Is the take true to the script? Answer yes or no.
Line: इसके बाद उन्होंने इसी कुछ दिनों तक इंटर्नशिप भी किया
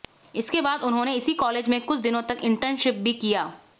no